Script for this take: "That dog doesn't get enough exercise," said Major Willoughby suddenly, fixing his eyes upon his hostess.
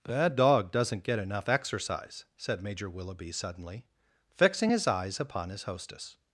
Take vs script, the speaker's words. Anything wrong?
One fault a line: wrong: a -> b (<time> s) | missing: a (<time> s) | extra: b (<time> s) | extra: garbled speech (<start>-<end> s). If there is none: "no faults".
no faults